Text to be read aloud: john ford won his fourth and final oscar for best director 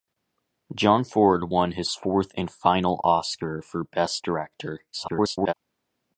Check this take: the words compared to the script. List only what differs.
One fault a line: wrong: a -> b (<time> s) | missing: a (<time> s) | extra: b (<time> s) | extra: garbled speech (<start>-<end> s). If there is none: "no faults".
extra: garbled speech (4.9-5.5 s)